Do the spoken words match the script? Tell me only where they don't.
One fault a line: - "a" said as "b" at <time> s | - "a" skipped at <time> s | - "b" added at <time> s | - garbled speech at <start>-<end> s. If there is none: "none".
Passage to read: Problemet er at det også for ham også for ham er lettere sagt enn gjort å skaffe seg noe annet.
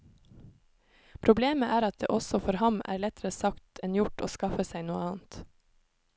- "også for ham" skipped at 2.8 s